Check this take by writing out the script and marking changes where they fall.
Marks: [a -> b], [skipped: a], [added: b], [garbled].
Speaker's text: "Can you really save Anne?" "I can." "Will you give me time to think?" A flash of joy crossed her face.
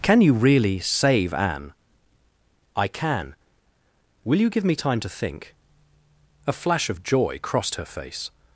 "Can you really save Anne?" "I can." "Will you give me time to think?" A flash of joy crossed her face.